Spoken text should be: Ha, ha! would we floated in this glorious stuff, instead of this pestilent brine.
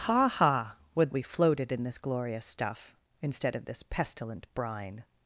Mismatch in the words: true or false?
false